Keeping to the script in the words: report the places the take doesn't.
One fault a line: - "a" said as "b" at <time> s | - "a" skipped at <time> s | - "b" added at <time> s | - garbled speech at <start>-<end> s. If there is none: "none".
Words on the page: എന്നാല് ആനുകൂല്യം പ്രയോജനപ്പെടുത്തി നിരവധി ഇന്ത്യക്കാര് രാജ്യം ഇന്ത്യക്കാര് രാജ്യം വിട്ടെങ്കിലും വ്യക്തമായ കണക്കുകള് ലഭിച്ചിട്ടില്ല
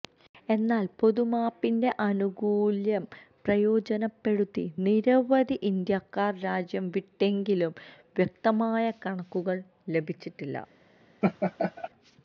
- "പൊതുമാപ്പിന്റെ" added at 1.0 s
- "ഇന്ത്യക്കാര് രാജ്യം" skipped at 6.9 s